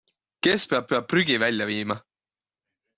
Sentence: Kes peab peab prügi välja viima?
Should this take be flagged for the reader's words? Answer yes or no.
no